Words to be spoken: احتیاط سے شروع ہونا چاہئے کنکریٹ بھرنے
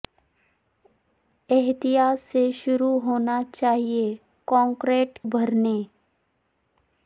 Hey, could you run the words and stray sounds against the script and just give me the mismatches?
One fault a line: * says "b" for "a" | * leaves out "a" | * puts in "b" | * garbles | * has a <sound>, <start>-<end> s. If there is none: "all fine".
all fine